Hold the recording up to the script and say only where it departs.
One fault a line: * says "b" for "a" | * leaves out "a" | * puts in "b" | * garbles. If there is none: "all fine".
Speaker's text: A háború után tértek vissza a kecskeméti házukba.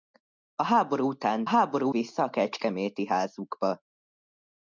* says "háború" for "tértek"